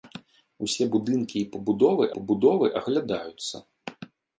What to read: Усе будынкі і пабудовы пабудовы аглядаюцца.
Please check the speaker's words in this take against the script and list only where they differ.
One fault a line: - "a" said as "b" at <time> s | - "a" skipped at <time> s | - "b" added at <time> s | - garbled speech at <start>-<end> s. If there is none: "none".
none